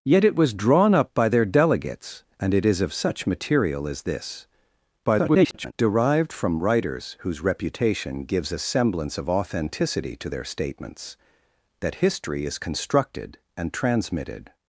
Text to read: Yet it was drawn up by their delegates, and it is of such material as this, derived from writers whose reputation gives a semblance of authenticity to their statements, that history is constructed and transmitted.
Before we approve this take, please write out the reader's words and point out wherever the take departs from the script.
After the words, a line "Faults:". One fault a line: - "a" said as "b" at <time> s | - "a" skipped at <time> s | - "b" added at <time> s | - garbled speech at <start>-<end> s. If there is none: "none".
Yet it was drawn up by their delegates, and it is of such material as this, [garbled] derived from writers whose reputation gives a semblance of authenticity to their statements, that history is constructed and transmitted.
Faults:
- garbled speech at 5.0-5.7 s